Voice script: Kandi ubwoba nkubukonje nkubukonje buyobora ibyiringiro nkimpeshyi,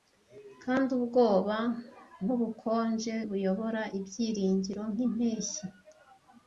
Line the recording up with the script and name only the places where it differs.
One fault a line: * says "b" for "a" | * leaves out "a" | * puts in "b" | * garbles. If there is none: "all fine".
* leaves out "nkubukonje"